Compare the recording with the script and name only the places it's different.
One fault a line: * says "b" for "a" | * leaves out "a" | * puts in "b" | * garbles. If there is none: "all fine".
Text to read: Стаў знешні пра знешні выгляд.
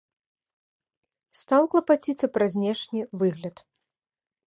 * says "клапаціцца" for "знешні"